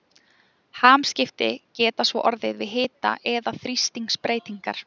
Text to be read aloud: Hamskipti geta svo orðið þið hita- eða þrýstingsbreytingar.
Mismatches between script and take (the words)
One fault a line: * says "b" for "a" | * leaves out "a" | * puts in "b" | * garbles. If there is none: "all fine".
* says "við" for "þið"